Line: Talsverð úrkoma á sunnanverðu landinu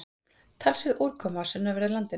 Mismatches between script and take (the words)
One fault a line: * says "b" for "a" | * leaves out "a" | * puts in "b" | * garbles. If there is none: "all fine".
all fine